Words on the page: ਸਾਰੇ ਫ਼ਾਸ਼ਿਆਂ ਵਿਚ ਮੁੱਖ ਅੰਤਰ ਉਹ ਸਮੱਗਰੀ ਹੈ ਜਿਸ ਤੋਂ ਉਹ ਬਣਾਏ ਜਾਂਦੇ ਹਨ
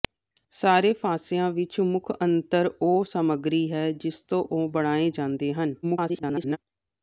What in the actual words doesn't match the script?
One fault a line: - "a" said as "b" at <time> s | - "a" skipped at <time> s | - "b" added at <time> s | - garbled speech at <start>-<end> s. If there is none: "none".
- garbled speech at 5.8-6.6 s